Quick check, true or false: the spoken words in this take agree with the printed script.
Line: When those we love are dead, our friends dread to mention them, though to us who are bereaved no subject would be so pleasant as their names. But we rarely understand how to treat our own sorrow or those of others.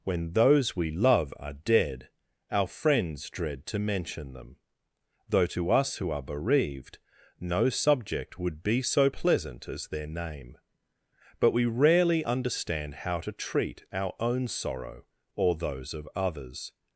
false